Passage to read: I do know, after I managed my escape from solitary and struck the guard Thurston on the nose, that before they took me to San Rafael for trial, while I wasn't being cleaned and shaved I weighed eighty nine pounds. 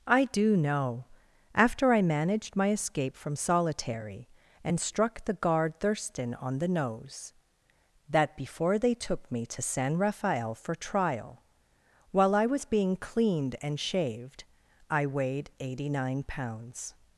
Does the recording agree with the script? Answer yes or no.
no